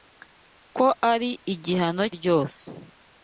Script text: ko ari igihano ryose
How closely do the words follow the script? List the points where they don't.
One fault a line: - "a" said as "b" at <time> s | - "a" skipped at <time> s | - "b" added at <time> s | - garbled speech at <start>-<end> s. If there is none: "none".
none